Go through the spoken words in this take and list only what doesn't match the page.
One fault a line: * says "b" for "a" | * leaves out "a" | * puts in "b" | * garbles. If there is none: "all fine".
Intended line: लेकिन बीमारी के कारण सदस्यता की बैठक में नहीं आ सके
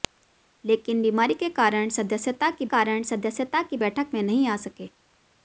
* puts in "कारण सदस्यता की"